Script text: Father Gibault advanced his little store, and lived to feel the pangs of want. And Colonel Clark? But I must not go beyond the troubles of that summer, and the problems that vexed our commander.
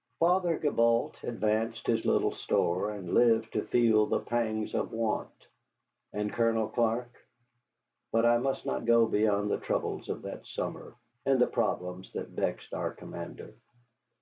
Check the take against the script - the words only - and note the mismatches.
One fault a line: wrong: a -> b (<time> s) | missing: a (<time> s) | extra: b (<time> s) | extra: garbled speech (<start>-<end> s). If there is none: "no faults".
no faults